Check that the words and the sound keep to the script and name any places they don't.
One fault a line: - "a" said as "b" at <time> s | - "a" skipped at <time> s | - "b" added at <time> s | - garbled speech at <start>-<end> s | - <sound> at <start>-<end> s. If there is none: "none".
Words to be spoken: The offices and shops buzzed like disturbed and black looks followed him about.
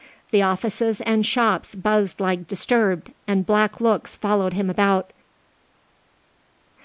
none